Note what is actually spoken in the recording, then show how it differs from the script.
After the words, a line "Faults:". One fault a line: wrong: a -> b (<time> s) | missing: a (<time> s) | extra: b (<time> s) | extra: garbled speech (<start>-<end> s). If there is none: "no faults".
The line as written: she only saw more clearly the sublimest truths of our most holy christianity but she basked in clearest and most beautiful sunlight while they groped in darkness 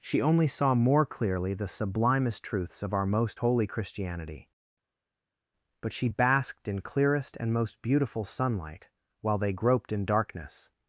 she only saw more clearly the sublimest truths of our most holy christianity but she basked in clearest and most beautiful sunlight while they groped in darkness
Faults:
no faults